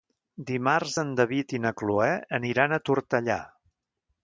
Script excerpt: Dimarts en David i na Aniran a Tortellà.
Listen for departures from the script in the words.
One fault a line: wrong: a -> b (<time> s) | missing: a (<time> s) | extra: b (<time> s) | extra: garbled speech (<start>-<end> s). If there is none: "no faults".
extra: Cloè (1.8 s)